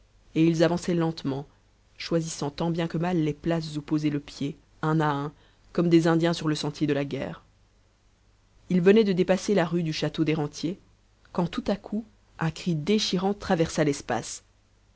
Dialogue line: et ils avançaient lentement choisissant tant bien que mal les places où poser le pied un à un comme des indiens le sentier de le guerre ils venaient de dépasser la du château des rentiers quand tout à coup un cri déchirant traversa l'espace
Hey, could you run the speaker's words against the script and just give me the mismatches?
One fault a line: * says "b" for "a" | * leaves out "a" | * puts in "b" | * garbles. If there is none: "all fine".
* puts in "sur"
* says "la" for "le"
* puts in "rue"